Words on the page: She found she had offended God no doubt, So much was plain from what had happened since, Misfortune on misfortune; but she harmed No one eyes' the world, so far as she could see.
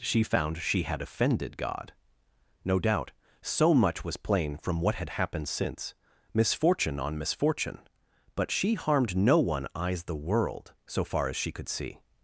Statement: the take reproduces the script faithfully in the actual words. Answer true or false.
true